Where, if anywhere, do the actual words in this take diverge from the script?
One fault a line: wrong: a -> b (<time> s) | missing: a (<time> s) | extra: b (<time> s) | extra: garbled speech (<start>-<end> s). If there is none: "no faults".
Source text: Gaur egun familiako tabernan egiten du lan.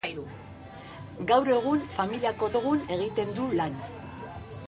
wrong: tabernan -> egun (2.5 s)